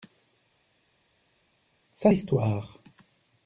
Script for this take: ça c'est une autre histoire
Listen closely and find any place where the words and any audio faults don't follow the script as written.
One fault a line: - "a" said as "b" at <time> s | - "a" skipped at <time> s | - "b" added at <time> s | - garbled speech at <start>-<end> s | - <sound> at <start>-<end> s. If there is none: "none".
- "c'est une autre" skipped at 2.1 s